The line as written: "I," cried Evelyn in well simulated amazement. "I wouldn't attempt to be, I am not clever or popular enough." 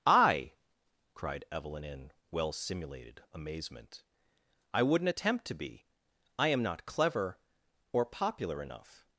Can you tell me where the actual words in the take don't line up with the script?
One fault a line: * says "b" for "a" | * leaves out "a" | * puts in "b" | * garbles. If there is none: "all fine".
all fine